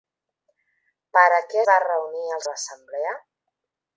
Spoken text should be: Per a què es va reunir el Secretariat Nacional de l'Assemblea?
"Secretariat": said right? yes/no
no